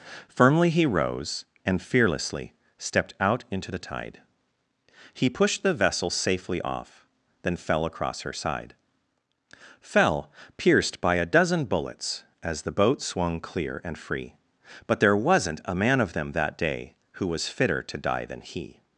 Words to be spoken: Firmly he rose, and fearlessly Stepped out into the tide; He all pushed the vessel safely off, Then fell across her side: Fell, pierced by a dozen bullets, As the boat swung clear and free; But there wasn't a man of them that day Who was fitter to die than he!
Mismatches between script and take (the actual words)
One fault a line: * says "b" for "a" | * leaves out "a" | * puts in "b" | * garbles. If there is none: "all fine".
* leaves out "all"